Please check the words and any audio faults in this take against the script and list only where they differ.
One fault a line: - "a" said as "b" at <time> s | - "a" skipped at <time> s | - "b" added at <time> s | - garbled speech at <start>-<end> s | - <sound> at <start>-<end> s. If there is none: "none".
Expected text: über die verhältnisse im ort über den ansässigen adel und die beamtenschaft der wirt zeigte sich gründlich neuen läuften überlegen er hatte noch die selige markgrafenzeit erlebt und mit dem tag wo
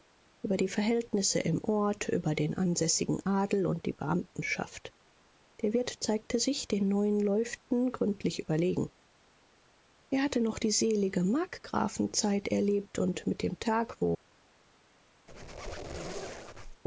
- "gründlich" said as "den" at 6.7 s
- "gründlich" added at 7.9 s
- squeak at 15.3-16.8 s